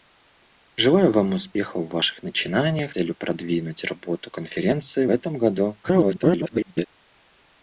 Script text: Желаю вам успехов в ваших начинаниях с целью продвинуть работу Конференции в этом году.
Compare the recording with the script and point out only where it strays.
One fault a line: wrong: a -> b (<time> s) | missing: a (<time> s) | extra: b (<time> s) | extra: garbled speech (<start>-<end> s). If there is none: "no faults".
missing: с (2.9 s)
missing: в (5.1 s)
extra: garbled speech (5.8-6.9 s)